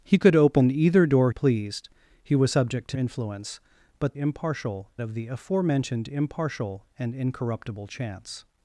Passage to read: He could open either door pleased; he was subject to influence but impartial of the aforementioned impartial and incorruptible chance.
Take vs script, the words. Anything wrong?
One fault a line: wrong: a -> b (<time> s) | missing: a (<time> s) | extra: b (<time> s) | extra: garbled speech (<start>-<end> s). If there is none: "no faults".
no faults